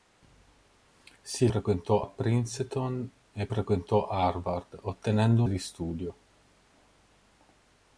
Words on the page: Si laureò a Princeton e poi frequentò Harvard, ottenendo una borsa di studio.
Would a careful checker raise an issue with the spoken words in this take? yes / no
yes